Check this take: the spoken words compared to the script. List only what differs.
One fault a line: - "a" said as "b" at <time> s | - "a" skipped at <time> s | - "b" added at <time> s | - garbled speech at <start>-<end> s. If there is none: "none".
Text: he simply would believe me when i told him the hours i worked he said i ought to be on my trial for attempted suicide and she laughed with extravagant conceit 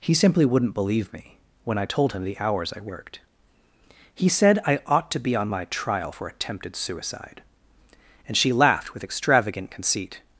- "would" said as "wouldn't" at 0.5 s